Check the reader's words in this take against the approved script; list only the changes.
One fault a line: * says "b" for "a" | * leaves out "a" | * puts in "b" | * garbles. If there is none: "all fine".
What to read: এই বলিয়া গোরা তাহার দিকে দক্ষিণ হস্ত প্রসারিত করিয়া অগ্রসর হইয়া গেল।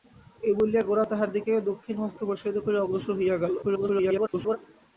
* garbles